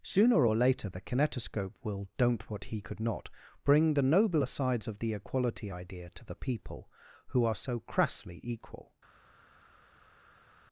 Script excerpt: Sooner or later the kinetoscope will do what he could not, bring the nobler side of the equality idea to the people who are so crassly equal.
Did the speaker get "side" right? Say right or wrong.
wrong